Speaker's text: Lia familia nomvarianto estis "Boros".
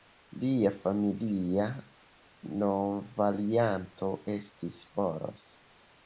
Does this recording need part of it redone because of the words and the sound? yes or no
no